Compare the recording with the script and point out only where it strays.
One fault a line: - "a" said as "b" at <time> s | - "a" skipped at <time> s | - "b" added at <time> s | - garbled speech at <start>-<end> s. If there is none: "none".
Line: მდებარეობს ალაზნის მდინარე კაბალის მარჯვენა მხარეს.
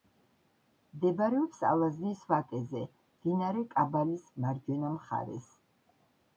- "ვაკეზე" added at 2.3 s